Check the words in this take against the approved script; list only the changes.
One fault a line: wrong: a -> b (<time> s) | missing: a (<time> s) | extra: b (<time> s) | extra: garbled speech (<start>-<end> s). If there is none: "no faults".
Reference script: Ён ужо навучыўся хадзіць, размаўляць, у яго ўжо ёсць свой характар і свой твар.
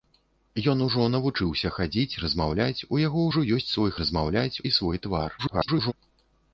wrong: характар -> размаўляць (4.0 s)
extra: garbled speech (5.4-5.9 s)